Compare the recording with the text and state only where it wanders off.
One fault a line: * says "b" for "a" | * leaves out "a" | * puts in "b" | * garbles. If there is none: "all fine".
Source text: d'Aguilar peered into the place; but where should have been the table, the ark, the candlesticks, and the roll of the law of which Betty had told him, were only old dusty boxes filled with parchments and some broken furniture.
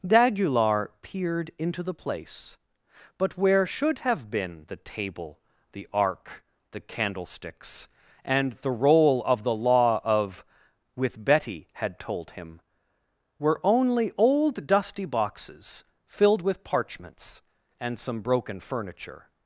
* says "with" for "which"